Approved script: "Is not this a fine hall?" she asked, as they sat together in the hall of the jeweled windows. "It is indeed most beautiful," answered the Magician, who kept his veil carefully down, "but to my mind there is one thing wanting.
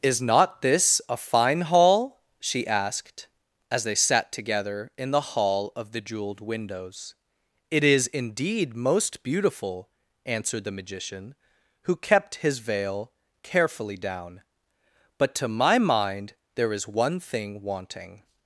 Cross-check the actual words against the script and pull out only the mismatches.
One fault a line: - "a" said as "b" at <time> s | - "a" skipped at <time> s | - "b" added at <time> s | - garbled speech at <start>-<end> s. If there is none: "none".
none